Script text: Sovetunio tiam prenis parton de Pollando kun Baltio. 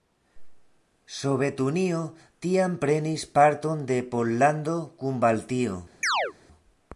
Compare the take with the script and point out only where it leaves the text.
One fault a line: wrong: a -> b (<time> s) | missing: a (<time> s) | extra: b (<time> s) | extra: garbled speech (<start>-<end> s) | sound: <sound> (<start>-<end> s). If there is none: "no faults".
sound: chirp (6.0-6.3 s)